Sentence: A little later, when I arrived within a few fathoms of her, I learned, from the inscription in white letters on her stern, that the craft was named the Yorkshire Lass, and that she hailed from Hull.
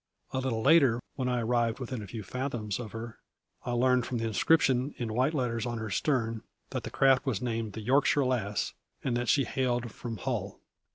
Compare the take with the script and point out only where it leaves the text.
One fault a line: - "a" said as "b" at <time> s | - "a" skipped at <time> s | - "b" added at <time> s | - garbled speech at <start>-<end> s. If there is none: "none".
none